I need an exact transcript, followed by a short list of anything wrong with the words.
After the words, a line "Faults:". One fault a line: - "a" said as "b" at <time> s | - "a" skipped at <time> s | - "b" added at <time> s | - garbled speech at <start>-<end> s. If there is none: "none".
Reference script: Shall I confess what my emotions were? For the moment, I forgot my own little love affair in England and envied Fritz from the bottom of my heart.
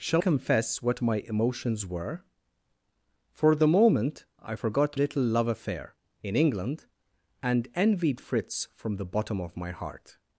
Shall confess what my emotions were? For the moment, I forgot little love affair in England and envied Fritz from the bottom of my heart.
Faults:
- "I" skipped at 0.2 s
- "my own" skipped at 5.0 s